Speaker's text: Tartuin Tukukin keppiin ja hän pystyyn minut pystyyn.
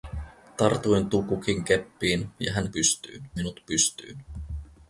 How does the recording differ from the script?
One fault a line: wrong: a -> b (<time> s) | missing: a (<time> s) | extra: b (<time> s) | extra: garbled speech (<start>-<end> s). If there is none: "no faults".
no faults